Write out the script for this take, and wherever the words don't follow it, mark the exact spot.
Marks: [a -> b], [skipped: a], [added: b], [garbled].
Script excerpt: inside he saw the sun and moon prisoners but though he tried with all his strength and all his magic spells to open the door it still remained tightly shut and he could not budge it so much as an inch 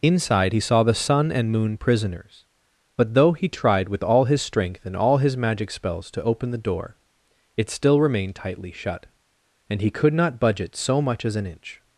inside he saw the sun and moon prisoners but though he tried with all his strength and all his magic spells to open the door it still remained tightly shut and he could not budge it so much as an inch